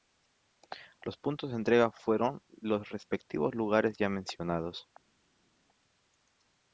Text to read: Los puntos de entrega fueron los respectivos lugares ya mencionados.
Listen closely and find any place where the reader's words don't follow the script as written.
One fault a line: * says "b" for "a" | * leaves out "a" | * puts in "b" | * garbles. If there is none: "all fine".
all fine